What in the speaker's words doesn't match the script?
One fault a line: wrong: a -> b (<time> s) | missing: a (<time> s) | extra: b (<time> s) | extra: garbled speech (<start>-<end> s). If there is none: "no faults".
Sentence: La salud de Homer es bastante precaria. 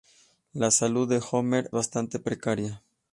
missing: es (1.7 s)